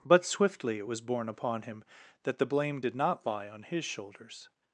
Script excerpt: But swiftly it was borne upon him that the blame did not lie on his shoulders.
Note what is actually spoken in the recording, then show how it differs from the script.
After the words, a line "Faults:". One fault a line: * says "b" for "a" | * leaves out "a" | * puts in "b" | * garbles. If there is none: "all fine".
But swiftly it was borne upon him that the blame did not lie on his shoulders.
Faults:
all fine